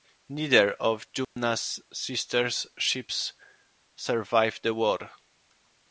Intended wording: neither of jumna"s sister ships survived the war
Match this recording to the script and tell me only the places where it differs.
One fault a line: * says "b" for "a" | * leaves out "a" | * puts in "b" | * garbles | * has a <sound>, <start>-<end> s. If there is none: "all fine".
* has a dropout, 1.2-1.4 s